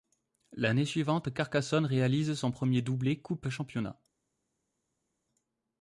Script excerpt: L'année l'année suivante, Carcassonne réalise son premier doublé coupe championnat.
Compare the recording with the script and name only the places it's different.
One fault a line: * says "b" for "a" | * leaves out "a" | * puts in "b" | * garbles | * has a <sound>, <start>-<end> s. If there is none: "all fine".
* leaves out "l'année"